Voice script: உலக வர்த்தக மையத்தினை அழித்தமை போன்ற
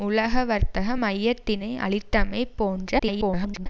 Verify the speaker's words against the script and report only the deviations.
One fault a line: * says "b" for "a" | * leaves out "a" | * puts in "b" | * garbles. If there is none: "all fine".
* garbles